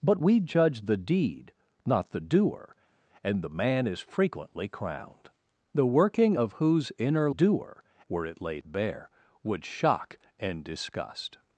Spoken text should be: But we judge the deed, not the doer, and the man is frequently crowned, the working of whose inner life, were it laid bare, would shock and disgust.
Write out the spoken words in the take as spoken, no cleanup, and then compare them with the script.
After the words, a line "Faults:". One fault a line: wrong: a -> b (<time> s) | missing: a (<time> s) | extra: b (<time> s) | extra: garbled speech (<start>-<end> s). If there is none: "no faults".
But we judge the deed, not the doer, and the man is frequently crowned, the working of whose inner doer, were it laid bare, would shock and disgust.
Faults:
wrong: life -> doer (7.3 s)